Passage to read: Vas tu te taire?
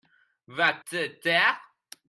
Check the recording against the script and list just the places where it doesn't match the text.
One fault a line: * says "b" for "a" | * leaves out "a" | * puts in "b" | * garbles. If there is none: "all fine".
* leaves out "tu"